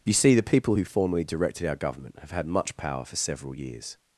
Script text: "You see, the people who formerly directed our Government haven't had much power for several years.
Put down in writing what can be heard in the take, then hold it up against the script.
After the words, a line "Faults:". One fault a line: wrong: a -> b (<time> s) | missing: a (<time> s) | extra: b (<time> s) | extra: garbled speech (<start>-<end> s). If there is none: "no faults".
"You see, the people who formerly directed our Government have had much power for several years.
Faults:
wrong: haven't -> have (2.2 s)